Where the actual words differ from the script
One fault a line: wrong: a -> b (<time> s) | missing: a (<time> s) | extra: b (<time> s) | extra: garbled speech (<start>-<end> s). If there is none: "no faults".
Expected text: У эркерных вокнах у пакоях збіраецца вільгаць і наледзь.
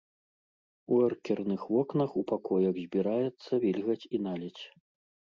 no faults